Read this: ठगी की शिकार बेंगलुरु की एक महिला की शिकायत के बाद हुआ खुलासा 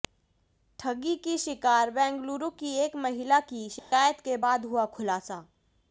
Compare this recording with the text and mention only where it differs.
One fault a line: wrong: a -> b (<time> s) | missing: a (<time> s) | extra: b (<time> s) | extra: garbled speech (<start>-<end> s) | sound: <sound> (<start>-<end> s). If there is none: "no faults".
sound: dropout (3.8-3.9 s)